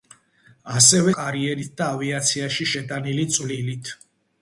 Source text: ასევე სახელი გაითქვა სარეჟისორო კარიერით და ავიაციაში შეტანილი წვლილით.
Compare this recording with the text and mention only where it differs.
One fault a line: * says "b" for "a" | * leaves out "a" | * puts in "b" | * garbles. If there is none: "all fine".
* leaves out "სახელი გაითქვა სარეჟისორო"